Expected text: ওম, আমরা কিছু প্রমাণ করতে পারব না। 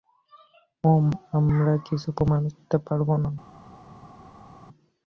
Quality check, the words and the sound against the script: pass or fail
pass